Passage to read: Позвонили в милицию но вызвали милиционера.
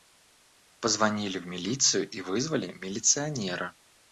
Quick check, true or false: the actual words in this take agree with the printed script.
false